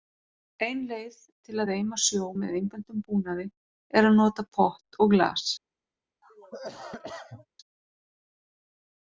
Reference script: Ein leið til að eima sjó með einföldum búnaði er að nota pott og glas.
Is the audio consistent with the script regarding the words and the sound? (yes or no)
no